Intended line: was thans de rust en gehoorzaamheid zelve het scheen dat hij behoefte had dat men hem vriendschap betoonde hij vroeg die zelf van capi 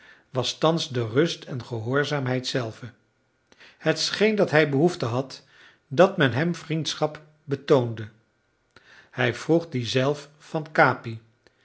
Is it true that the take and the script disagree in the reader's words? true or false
false